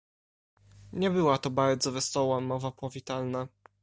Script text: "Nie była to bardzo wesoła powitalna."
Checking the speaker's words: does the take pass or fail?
fail